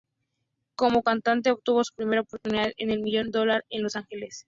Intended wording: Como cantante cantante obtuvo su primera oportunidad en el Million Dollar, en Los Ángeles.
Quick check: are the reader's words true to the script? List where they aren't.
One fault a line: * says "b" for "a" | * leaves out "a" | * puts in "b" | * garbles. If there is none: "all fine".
* leaves out "cantante"